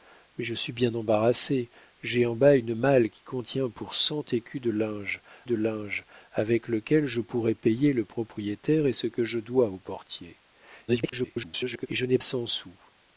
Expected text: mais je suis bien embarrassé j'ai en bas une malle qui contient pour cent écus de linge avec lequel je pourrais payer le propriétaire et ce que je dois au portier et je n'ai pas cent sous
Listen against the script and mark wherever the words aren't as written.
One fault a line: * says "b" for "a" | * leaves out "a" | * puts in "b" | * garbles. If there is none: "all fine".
* puts in "de linge"
* garbles
* leaves out "pas"